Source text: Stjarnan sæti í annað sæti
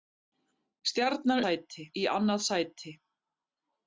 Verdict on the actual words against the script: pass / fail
pass